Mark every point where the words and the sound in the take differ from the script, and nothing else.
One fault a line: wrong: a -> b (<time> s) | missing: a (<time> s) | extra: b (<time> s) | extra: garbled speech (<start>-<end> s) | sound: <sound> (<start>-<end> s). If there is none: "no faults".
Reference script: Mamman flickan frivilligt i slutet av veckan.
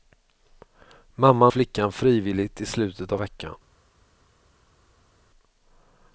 no faults